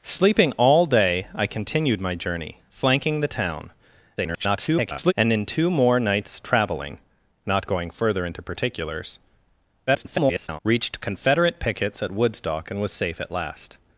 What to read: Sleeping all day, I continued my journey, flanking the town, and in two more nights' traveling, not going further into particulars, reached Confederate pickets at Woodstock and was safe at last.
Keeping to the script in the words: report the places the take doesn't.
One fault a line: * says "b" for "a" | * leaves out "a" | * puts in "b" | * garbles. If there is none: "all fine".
* garbles
* garbles